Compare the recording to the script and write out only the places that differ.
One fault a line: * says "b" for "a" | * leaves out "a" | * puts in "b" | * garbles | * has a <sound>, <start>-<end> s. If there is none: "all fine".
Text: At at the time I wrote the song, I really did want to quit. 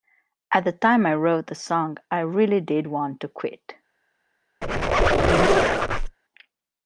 * leaves out "at"
* has a squeak, 4.6-6.2 s